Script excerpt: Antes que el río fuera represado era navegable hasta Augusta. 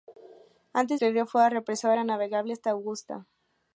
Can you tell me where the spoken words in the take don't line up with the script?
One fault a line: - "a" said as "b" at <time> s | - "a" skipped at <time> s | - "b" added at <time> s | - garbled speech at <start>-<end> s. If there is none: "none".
none